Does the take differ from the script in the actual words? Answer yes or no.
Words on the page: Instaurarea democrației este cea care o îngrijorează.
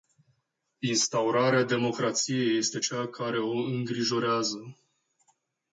no